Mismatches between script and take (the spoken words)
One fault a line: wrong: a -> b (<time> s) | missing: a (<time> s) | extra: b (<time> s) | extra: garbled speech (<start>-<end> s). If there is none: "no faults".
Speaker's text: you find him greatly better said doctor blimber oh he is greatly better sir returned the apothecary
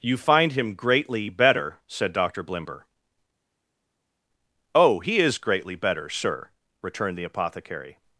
no faults